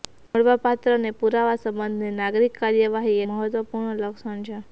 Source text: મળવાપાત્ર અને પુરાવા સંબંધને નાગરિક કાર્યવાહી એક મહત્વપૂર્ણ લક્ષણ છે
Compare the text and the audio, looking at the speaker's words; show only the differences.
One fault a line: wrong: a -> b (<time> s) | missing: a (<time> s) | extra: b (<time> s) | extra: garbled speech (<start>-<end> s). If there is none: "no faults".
missing: એક (3.2 s)